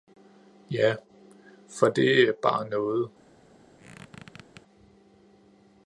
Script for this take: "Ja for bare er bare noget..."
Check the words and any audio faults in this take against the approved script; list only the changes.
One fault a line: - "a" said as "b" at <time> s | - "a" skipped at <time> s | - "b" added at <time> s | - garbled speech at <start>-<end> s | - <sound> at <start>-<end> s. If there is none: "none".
- "bare" said as "det" at 1.9 s
- squeak at 3.8-4.6 s